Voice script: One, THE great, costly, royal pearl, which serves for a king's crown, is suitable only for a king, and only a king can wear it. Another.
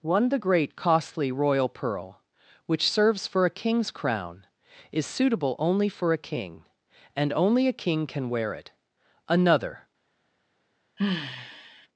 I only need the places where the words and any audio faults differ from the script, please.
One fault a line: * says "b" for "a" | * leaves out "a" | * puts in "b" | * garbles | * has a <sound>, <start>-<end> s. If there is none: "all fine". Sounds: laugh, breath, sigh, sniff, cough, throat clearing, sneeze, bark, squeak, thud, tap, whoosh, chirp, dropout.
* has a sigh, 11.0-11.9 s